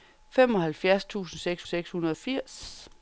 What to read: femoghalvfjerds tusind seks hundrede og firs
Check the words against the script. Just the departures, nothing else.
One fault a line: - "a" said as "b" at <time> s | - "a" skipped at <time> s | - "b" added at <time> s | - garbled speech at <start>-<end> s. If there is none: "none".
- "seks" added at 1.7 s